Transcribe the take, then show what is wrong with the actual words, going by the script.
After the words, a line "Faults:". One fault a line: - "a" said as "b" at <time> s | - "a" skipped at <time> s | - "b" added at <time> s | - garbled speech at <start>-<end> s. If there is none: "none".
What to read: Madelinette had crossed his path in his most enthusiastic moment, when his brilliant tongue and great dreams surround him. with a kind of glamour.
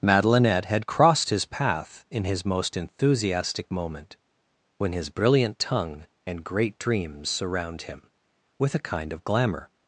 Madelinette had crossed his path in his most enthusiastic moment, when his brilliant tongue and great dreams surround him. with a kind of glamour.
Faults:
none